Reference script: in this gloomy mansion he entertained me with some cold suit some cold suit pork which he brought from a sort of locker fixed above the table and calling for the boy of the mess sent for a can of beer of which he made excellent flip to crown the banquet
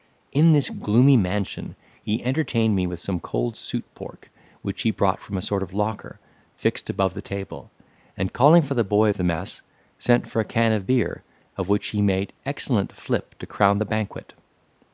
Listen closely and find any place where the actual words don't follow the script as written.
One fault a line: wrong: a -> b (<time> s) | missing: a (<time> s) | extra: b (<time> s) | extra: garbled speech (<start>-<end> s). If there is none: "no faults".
missing: some cold suit (3.8 s)